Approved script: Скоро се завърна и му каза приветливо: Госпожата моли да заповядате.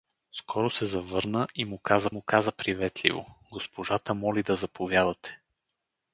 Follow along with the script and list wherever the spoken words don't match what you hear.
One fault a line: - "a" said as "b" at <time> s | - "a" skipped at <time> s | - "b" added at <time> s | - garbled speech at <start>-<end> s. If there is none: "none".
- "му каза" added at 2.1 s